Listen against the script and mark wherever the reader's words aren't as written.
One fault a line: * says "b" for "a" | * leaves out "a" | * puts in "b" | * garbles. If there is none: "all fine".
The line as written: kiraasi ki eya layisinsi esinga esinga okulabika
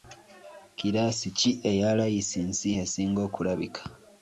* leaves out "esinga"